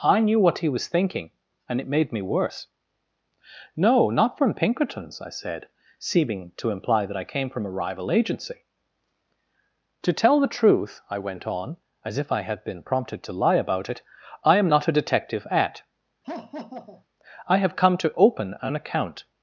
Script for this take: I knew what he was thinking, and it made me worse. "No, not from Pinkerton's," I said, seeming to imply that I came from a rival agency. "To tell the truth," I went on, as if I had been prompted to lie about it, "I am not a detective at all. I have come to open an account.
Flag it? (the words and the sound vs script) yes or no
yes